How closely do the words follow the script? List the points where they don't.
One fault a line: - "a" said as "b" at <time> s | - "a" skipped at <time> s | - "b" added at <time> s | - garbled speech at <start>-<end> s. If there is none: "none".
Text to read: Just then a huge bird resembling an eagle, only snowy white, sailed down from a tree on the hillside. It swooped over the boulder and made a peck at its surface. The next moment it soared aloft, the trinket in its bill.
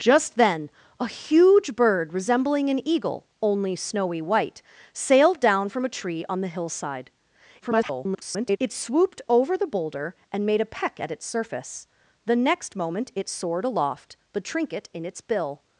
- garbled speech at 7.6-8.6 s